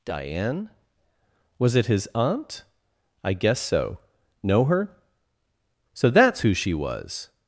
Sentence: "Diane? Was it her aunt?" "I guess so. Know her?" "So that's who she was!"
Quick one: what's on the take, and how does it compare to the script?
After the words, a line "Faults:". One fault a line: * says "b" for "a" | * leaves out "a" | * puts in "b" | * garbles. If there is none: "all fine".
"Diane? Was it his aunt?" "I guess so. Know her?" "So that's who she was!"
Faults:
* says "his" for "her"